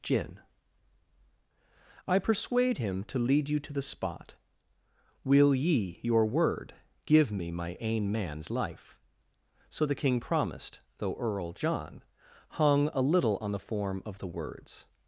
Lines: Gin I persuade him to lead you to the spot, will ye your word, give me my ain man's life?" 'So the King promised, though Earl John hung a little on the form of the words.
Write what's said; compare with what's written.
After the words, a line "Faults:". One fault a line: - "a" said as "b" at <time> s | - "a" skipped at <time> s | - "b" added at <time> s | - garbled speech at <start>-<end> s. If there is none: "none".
Gin I persuade him to lead you to the spot, will ye your word, give me my ain man's life?" 'So the King promised, though Earl John hung a little on the form of the words.
Faults:
none